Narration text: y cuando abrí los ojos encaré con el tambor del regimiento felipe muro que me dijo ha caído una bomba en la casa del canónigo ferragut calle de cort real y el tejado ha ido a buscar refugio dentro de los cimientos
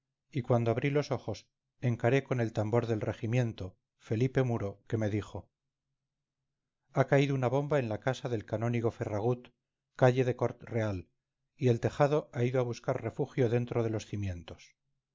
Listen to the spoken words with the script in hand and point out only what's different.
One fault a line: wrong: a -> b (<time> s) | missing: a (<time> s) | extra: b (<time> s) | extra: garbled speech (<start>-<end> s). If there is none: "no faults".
no faults